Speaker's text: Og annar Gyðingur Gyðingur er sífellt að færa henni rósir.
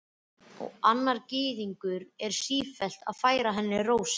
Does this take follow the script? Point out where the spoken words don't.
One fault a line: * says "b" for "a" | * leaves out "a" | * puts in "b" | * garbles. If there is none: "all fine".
* leaves out "Gyðingur"